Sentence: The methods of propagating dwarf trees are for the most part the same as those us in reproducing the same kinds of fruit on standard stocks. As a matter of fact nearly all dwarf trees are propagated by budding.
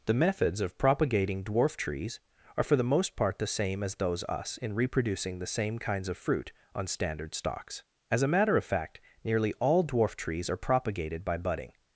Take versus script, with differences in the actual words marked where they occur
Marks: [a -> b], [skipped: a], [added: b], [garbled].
The methods of propagating dwarf trees are for the most part the same as those us in reproducing the same kinds of fruit on standard stocks. As a matter of fact nearly all dwarf trees are propagated by budding.